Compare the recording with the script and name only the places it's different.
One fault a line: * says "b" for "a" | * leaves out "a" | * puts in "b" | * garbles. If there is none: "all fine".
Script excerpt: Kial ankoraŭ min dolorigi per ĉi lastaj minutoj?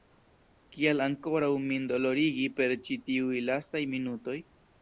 * puts in "tiuj"